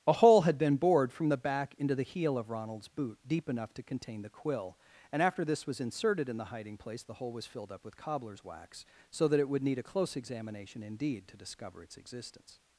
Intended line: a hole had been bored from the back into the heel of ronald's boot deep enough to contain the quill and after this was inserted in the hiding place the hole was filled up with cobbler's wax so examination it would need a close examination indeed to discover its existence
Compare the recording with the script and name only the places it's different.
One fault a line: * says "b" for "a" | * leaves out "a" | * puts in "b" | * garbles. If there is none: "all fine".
* says "that" for "examination"